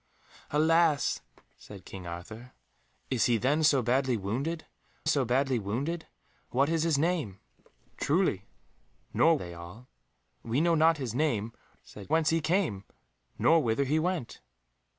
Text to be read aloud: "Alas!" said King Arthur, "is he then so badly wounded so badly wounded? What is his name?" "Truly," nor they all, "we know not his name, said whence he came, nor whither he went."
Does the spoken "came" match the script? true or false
true